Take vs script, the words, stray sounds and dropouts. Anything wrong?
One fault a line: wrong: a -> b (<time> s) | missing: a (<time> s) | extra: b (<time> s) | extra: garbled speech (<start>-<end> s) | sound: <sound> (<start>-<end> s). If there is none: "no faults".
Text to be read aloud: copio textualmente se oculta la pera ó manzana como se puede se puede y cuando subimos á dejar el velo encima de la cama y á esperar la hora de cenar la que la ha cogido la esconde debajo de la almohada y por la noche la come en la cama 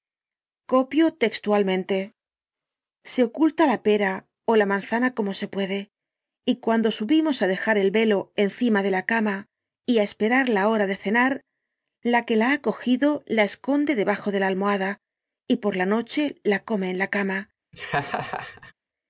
extra: la (4.5 s)
missing: se puede (5.8 s)
sound: laugh (17.7-18.7 s)